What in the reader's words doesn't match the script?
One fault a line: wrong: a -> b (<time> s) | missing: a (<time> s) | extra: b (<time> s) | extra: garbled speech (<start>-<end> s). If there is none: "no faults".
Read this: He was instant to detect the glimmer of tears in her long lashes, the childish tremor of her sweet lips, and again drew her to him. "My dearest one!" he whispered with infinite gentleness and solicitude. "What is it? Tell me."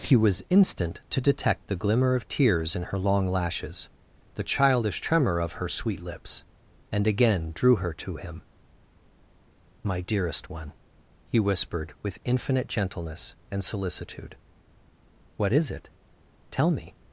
no faults